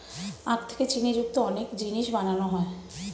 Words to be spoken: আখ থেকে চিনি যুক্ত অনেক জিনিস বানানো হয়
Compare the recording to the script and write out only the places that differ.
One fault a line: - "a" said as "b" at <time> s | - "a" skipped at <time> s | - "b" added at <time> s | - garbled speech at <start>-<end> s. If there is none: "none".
none